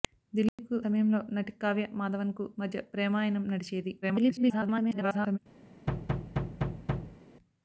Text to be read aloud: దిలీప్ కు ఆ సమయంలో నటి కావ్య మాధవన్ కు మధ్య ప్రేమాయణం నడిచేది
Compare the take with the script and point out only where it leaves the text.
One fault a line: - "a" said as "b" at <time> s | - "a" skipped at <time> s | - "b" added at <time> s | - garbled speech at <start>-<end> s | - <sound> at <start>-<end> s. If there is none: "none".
- dropout at 0.5-0.6 s
- "ఆ" skipped at 0.8 s
- garbled speech at 4.0-5.4 s
- thud at 5.9-7.2 s